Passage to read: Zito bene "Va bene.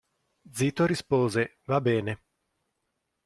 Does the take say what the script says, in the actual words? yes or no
no